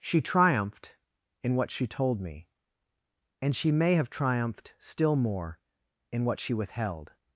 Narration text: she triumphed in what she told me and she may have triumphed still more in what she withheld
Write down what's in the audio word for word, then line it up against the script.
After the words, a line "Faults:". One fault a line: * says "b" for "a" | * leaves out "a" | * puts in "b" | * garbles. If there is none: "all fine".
she triumphed in what she told me and she may have triumphed still more in what she withheld
Faults:
all fine